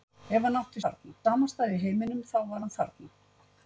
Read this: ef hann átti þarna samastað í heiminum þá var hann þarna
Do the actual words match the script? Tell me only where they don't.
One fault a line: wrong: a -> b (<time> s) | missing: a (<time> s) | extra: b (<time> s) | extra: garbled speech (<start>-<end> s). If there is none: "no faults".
no faults